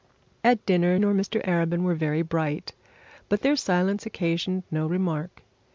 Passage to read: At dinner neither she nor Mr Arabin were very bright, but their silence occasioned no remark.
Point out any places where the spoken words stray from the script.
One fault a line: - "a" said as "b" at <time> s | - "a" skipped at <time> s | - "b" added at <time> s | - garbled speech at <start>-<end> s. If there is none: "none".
- "neither she" skipped at 1.0 s